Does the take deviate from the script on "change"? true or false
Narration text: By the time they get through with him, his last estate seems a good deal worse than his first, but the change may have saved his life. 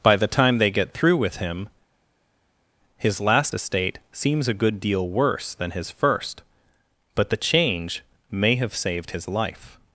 false